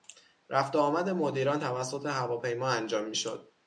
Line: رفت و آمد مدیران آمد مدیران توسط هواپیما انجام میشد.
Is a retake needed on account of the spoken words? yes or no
yes